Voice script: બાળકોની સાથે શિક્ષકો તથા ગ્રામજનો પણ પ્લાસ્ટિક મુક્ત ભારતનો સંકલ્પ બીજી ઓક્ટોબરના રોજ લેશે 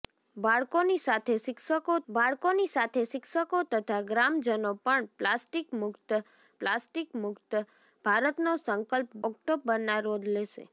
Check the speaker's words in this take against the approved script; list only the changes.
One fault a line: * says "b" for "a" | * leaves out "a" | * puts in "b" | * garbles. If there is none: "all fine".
* puts in "બાળકોની સાથે શિક્ષકો"
* puts in "પ્લાસ્ટિક મુક્ત"
* leaves out "બીજી"